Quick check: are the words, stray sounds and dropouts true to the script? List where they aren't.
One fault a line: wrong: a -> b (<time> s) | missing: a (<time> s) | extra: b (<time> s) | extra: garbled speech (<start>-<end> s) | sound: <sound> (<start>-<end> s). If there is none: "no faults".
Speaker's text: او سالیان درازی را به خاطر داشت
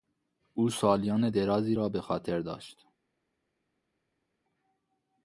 no faults